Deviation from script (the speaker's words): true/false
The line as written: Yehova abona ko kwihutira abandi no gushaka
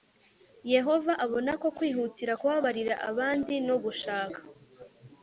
true